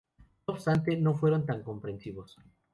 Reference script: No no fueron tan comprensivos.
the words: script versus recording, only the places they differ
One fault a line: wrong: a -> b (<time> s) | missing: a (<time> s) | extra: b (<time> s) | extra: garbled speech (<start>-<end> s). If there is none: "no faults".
extra: obstante (0.6 s)